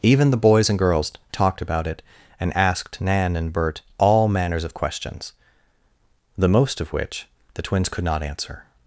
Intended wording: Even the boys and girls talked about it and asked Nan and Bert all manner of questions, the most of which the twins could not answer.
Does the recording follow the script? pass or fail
fail